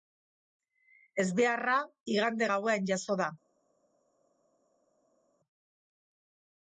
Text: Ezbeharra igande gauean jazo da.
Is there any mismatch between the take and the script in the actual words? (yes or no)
no